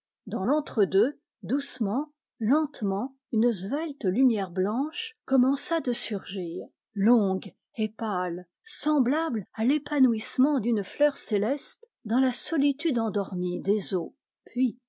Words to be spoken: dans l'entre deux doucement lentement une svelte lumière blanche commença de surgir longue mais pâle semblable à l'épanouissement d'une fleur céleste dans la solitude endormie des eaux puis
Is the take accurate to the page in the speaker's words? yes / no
no